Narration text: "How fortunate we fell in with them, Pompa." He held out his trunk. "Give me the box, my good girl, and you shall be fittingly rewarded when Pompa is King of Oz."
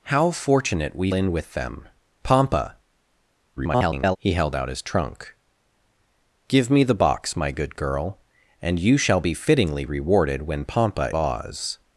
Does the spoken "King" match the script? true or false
false